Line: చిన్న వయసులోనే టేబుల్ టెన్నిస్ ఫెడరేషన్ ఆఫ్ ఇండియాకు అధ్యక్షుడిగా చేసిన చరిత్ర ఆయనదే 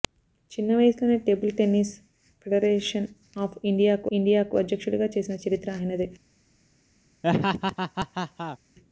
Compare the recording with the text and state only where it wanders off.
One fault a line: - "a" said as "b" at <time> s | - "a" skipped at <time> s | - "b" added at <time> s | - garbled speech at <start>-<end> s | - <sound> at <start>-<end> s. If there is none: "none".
- "ఇండియాకు" added at 4.1 s
- laugh at 7.2-8.6 s